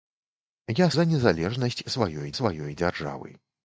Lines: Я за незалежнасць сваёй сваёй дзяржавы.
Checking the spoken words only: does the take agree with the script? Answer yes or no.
yes